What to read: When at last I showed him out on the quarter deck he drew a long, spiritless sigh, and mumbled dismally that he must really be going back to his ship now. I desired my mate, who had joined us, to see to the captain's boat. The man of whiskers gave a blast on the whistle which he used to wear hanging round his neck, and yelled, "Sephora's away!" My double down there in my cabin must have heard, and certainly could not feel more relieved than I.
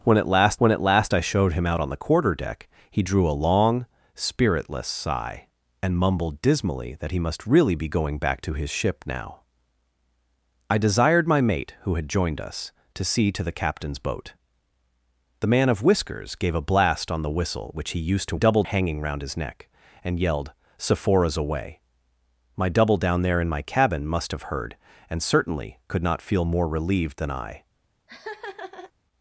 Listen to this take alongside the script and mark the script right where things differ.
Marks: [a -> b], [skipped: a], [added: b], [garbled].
When at last [added: when at last] I showed him out on the quarter deck he drew a long, spiritless sigh, and mumbled dismally that he must really be going back to his ship now. I desired my mate, who had joined us, to see to the captain's boat. The man of whiskers gave a blast on the whistle which he used to [wear -> double] hanging round his neck, and yelled, "Sephora's away!" My double down there in my cabin must have heard, and certainly could not feel more relieved than I.